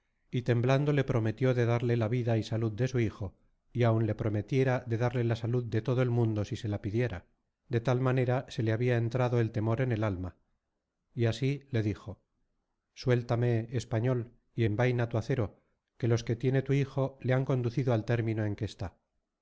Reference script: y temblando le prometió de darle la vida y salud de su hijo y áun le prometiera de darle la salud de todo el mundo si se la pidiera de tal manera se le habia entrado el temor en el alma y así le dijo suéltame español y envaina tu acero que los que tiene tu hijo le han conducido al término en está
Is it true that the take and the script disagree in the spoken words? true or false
true